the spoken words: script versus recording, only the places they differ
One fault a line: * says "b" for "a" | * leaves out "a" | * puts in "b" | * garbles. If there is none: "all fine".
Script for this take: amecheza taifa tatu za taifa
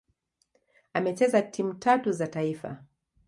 * says "timu" for "taifa"